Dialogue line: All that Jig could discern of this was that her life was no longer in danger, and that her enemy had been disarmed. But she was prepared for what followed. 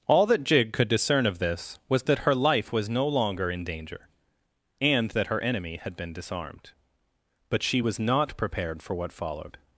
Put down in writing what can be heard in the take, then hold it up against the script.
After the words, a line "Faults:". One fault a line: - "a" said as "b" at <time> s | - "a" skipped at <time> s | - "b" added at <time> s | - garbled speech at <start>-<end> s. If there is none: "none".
All that Jig could discern of this was that her life was no longer in danger, and that her enemy had been disarmed. But she was not prepared for what followed.
Faults:
- "not" added at 8.0 s